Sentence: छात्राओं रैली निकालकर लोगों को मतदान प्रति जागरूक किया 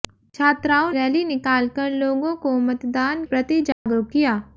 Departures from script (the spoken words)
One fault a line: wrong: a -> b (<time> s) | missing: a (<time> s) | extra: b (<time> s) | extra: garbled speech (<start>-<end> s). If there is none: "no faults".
no faults